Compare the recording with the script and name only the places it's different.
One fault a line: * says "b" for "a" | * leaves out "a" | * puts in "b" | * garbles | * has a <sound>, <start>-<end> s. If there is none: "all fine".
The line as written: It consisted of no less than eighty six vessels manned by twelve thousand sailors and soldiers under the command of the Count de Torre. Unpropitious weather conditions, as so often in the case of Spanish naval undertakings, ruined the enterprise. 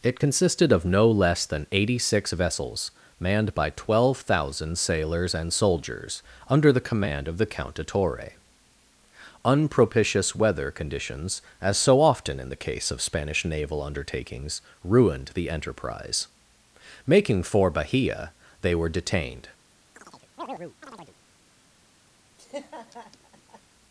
* puts in "Making for Bahia they were detained"
* has a chirp, 19.9-21.2 s
* has a laugh, 22.4-23.6 s